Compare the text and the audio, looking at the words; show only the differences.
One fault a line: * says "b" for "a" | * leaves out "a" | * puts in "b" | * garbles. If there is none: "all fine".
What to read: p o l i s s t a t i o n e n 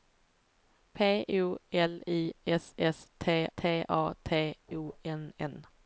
* puts in "t"
* leaves out "i"
* leaves out "e"